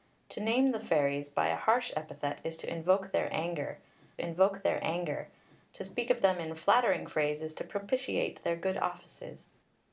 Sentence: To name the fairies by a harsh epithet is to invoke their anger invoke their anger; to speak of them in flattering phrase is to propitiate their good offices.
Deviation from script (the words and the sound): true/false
false